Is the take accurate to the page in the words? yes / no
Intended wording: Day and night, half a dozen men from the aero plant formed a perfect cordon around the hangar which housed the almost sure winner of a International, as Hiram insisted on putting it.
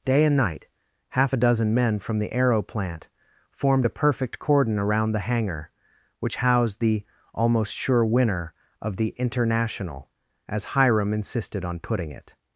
no